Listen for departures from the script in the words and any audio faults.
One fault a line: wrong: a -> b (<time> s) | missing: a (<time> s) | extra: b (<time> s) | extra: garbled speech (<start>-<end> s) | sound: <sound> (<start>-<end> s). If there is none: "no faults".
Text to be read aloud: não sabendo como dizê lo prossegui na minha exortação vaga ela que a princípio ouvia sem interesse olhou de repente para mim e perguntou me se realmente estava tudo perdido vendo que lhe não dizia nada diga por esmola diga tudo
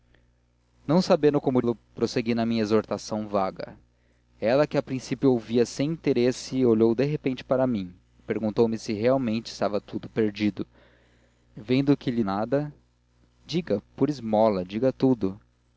missing: dizê (1.6 s)
missing: não dizia (12.2 s)